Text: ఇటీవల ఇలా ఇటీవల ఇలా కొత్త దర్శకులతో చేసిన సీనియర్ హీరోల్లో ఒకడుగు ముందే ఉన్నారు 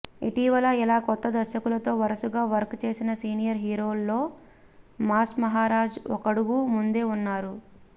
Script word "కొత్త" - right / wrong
wrong